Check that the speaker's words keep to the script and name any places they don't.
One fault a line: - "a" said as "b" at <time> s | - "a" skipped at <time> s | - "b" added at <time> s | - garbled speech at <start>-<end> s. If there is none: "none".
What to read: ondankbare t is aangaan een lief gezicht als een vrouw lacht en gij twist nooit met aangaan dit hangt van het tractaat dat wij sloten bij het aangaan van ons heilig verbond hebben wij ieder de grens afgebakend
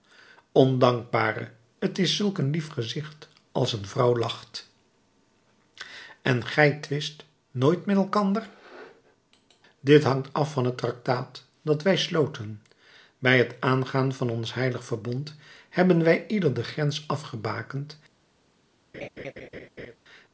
- "aangaan" said as "zulk" at 2.1 s
- "aangaan" said as "elkander" at 8.0 s
- "af" added at 10.3 s